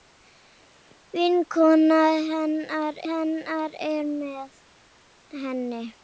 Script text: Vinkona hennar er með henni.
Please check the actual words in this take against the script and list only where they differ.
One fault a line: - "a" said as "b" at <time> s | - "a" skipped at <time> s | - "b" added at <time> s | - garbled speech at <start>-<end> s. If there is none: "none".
- "hennar" added at 3.1 s